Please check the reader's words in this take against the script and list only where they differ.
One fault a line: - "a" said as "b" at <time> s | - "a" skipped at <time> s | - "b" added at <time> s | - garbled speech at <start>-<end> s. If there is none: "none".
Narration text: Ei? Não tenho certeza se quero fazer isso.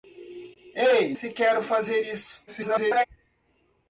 - "Não tenho certeza" skipped at 1.1 s
- garbled speech at 2.5-3.1 s